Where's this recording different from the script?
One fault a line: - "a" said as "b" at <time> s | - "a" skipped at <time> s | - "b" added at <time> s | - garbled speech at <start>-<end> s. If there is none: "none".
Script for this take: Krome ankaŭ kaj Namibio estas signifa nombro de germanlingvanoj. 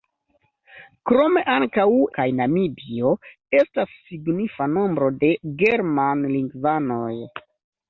none